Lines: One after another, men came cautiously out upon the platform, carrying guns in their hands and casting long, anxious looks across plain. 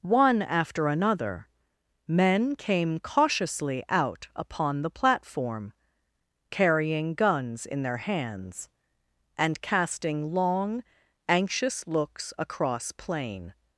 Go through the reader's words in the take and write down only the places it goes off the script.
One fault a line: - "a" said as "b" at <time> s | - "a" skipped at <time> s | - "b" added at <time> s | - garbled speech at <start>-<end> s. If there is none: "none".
none